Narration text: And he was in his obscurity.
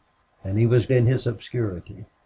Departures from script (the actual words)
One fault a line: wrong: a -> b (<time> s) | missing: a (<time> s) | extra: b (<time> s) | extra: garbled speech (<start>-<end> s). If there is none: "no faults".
no faults